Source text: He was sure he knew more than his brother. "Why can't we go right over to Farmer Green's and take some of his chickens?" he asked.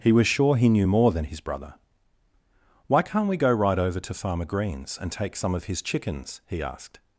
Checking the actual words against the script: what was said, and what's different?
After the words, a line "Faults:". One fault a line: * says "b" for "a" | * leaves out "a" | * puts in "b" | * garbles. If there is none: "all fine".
He was sure he knew more than his brother. "Why can't we go right over to Farmer Green's and take some of his chickens?" he asked.
Faults:
all fine